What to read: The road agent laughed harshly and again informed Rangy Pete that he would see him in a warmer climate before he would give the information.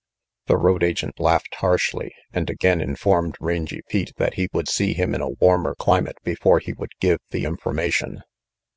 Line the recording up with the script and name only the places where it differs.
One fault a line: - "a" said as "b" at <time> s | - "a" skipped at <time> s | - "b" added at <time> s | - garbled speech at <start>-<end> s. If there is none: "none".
none